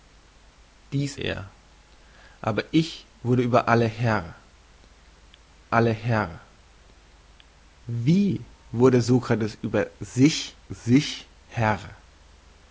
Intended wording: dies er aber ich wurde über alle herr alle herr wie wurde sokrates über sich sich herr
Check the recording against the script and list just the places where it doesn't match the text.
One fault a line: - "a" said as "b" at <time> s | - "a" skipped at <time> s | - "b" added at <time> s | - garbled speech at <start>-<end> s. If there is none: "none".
none